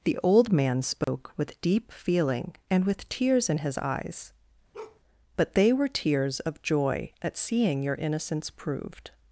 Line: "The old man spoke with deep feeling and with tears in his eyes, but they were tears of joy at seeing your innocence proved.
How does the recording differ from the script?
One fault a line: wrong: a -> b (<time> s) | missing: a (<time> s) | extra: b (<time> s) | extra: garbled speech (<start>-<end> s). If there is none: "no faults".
no faults